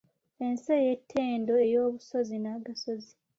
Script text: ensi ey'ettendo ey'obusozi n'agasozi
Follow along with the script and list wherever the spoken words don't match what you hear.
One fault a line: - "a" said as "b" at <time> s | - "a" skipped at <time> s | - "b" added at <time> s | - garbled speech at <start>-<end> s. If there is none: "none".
none